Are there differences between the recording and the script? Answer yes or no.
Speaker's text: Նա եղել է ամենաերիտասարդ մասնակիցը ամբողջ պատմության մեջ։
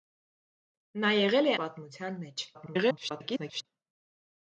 yes